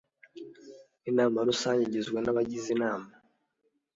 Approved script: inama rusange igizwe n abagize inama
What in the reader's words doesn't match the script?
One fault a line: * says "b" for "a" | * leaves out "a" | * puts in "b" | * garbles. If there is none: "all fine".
all fine